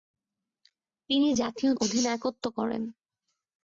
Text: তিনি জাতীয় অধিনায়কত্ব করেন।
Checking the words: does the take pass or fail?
pass